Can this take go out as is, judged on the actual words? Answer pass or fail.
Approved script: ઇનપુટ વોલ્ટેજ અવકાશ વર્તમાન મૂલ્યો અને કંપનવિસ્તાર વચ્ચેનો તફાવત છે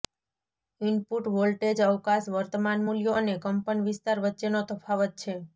pass